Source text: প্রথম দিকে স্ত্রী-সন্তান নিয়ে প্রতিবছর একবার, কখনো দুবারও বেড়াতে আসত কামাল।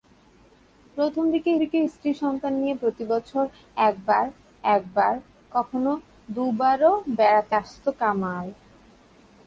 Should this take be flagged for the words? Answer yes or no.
yes